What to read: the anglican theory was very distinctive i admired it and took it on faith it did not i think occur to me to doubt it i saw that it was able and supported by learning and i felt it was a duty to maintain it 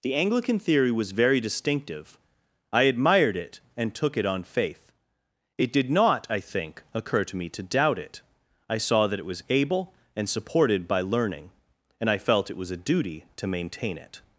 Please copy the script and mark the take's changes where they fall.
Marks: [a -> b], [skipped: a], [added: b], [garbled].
the anglican theory was very distinctive i admired it and took it on faith it did not i think occur to me to doubt it i saw that it was able and supported by learning and i felt it was a duty to maintain it